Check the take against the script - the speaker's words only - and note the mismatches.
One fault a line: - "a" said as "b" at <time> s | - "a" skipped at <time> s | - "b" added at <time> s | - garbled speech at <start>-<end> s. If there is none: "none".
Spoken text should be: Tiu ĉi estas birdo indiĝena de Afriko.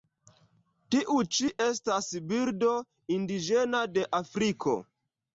none